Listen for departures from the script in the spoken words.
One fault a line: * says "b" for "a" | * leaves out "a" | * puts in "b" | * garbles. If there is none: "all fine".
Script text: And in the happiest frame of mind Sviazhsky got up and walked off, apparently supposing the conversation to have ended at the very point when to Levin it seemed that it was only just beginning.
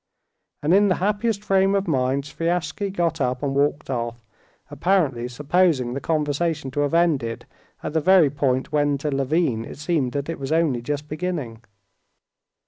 all fine